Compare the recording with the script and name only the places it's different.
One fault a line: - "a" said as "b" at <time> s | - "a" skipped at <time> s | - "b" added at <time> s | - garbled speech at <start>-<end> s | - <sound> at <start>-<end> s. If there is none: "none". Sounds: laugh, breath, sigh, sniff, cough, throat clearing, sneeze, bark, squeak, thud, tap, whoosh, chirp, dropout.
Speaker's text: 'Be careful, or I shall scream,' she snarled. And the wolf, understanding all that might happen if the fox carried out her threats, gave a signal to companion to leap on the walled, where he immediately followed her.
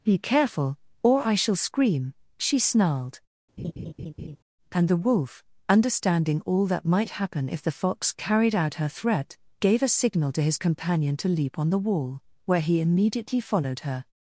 - laugh at 3.6-4.4 s
- "threats" said as "threat" at 8.9 s
- "his" added at 10.4 s
- "walled" said as "wall" at 11.8 s